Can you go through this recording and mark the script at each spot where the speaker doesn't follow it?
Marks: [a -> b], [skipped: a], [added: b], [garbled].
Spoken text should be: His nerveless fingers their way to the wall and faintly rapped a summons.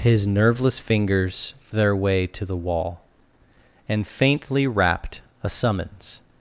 His nerveless fingers their way to the wall and faintly rapped a summons.